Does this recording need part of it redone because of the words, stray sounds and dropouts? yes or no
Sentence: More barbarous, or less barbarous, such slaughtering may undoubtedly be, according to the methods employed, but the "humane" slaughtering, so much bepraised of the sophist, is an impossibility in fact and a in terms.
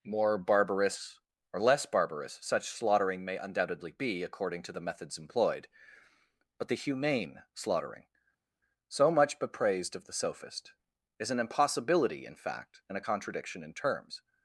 yes